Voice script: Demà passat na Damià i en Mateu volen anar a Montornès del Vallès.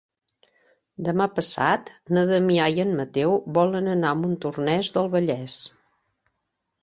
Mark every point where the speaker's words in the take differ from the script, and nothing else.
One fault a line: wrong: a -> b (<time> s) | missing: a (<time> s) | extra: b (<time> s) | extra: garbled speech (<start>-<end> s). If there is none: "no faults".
no faults